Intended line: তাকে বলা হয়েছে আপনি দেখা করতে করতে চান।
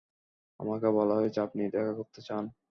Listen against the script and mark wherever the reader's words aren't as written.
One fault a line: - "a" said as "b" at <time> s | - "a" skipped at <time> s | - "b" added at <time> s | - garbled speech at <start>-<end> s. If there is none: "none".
- "তাকে" said as "আমাকে" at 0.6 s
- "করতে" skipped at 2.2 s